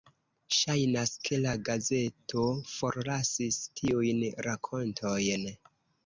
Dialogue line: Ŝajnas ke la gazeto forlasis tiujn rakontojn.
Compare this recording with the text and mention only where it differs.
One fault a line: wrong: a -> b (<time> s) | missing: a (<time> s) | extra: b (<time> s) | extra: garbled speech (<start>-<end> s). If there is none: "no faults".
no faults